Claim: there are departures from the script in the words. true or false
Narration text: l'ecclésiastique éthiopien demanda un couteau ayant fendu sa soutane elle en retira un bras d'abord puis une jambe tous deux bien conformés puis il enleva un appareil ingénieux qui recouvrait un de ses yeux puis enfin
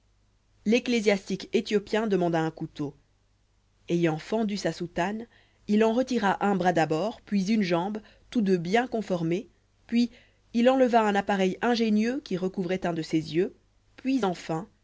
true